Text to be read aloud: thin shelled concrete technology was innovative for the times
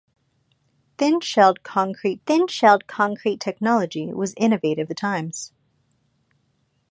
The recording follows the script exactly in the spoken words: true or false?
false